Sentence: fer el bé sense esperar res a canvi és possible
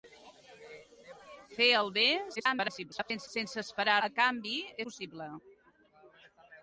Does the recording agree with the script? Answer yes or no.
no